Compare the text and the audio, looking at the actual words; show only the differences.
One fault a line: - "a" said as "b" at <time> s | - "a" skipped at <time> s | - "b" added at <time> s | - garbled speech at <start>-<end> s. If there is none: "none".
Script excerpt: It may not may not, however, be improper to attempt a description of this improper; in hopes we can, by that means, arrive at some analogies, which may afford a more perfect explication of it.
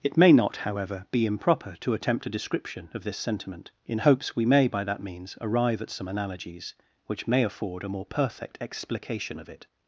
- "may not" skipped at 0.6 s
- "improper" said as "sentiment" at 3.2 s
- "can" said as "may" at 4.4 s